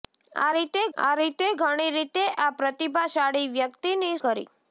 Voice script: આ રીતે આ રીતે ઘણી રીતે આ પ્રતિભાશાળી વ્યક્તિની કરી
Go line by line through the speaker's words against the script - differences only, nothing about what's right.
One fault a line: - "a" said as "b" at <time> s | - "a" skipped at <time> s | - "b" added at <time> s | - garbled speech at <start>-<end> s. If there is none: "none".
none